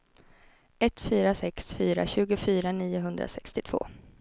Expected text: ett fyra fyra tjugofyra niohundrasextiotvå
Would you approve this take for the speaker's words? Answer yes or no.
no